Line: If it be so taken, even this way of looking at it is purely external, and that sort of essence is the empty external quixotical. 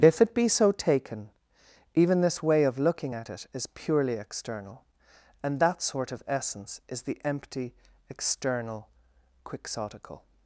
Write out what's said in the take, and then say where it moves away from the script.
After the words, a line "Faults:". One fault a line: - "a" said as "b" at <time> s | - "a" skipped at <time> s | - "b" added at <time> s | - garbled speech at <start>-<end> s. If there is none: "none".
If it be so taken, even this way of looking at it is purely external, and that sort of essence is the empty external quixotical.
Faults:
none